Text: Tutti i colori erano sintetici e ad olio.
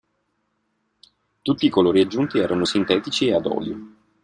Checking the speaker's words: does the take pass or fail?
fail